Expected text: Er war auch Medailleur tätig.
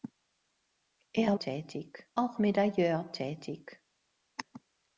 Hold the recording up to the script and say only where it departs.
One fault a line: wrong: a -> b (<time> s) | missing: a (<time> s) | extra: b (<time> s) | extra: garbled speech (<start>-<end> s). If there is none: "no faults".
wrong: war -> tätig (1.4 s)